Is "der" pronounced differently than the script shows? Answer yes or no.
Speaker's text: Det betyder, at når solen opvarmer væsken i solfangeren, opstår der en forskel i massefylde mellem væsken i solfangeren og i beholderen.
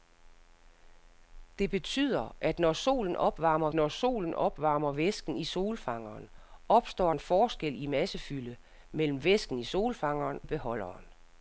yes